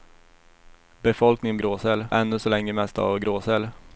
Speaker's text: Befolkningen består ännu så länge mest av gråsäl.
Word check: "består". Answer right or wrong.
wrong